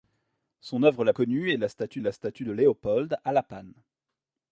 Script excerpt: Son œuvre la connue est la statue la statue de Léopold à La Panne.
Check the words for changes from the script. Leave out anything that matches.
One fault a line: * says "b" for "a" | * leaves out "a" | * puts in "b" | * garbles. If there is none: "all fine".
all fine